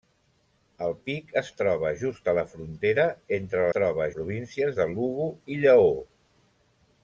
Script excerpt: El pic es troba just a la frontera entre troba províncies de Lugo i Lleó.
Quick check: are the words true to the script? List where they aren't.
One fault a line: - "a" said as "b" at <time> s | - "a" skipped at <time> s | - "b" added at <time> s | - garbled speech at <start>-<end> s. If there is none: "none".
none